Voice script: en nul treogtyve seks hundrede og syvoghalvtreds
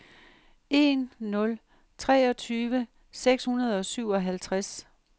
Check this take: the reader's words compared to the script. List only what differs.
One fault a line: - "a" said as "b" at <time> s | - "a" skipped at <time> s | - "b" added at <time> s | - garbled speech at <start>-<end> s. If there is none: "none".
none